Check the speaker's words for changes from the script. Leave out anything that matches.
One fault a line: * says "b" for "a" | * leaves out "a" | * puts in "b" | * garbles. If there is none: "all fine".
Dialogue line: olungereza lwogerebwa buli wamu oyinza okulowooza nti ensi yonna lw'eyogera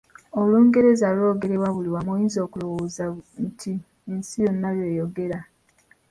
all fine